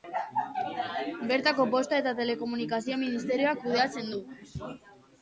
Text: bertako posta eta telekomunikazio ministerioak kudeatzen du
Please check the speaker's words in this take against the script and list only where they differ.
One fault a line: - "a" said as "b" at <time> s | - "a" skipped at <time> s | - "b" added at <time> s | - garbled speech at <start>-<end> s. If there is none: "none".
none